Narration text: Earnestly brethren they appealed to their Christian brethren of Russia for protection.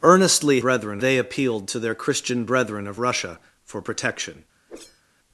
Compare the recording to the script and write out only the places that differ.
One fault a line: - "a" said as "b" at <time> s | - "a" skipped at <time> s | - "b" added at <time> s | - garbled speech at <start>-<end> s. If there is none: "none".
none